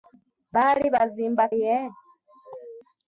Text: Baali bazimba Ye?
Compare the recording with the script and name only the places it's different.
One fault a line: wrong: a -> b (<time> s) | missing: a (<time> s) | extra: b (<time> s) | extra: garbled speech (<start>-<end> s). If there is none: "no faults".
no faults